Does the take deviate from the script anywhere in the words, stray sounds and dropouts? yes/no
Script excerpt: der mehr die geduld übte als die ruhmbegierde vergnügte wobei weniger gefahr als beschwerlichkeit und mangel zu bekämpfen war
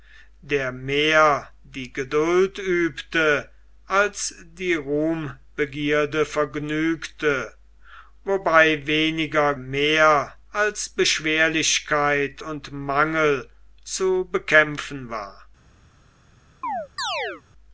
yes